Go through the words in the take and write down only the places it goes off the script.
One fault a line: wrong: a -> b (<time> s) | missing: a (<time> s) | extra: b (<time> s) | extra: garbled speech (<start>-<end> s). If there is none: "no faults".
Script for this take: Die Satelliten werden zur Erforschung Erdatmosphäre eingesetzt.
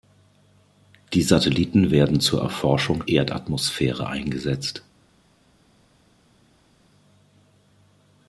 no faults